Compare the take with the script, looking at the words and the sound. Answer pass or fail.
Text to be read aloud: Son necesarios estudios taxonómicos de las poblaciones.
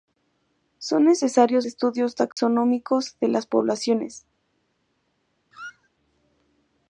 fail